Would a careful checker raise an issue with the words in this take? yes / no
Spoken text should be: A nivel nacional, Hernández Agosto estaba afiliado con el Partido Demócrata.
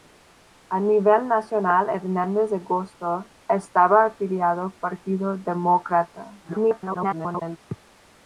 yes